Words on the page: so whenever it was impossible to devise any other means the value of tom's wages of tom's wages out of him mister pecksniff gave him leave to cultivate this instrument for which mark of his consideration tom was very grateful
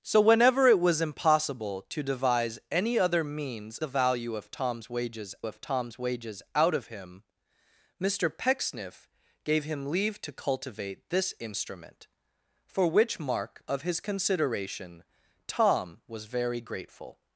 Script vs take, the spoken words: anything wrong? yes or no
no